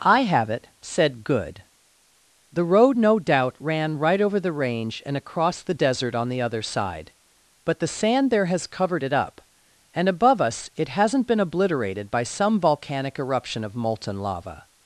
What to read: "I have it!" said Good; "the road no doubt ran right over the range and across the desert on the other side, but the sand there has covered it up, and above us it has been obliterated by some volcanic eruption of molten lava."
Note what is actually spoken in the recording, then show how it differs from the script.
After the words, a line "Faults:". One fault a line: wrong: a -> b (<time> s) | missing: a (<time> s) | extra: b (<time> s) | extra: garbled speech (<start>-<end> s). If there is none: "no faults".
"I have it!" said Good; "the road no doubt ran right over the range and across the desert on the other side, but the sand there has covered it up, and above us it hasn't been obliterated by some volcanic eruption of molten lava."
Faults:
wrong: has -> hasn't (10.9 s)